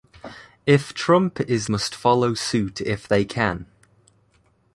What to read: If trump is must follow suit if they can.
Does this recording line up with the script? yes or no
yes